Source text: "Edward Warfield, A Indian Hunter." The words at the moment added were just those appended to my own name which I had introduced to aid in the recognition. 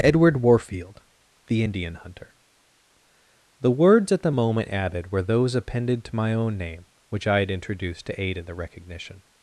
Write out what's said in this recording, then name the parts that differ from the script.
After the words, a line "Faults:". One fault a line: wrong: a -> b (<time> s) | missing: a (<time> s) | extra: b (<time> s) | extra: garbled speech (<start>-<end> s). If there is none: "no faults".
"Edward Warfield, The Indian Hunter." The words at the moment added were those appended to my own name which I had introduced to aid in the recognition.
Faults:
wrong: A -> The (1.4 s)
missing: just (5.2 s)